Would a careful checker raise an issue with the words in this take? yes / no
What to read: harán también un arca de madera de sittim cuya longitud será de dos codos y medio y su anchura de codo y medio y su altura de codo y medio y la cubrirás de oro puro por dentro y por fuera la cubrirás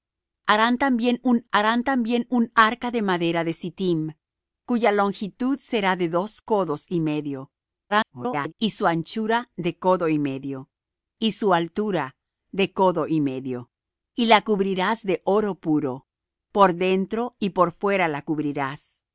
yes